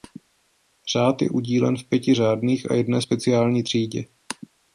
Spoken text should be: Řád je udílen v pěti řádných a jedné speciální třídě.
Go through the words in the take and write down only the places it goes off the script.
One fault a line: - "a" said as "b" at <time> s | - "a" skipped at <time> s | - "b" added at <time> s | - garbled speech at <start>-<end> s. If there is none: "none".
none